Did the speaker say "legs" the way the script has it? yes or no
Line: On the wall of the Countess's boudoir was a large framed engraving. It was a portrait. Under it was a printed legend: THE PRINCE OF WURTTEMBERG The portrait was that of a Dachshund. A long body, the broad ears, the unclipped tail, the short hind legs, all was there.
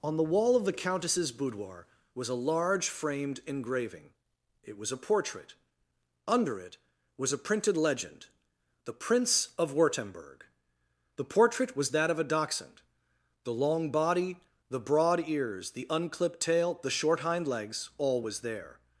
yes